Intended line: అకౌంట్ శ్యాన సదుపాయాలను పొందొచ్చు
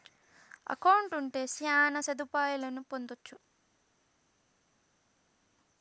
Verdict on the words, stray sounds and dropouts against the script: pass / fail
fail